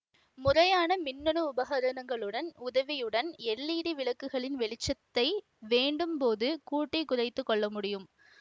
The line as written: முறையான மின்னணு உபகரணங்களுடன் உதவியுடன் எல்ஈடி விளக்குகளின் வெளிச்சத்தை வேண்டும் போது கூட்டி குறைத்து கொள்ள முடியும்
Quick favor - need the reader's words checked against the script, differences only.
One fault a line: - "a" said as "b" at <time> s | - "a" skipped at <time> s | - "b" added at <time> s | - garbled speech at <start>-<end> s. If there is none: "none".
none